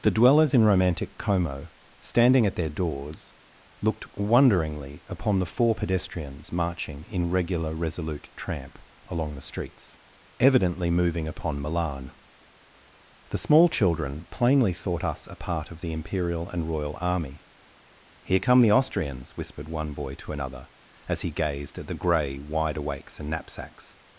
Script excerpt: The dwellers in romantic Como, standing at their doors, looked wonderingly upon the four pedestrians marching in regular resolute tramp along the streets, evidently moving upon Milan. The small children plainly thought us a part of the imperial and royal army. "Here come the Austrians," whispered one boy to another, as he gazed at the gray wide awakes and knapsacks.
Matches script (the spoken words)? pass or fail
pass